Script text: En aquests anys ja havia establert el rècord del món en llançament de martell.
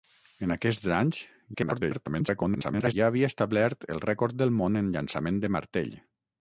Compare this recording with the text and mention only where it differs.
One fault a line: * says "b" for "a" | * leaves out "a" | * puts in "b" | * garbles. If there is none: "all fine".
* garbles